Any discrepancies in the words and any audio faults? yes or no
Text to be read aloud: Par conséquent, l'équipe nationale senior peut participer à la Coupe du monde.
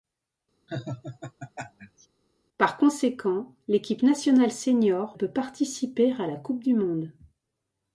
yes